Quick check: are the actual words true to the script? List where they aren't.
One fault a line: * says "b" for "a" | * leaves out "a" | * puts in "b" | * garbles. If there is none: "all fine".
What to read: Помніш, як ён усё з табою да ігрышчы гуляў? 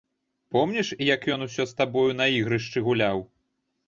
* says "на" for "да"